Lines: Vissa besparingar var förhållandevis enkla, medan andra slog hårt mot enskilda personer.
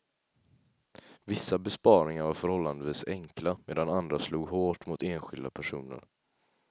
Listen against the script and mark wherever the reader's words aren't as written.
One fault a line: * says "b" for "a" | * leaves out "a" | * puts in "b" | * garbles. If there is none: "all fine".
all fine